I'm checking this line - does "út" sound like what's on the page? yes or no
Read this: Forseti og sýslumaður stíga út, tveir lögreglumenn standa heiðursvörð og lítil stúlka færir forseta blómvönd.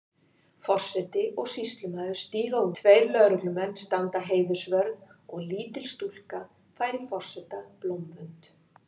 no